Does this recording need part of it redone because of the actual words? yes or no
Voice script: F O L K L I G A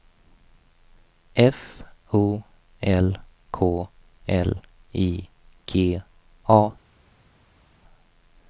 no